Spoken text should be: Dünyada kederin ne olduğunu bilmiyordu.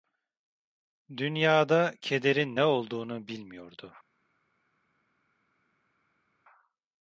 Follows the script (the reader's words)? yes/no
yes